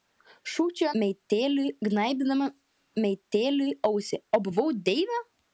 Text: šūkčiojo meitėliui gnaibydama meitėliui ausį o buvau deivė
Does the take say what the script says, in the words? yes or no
yes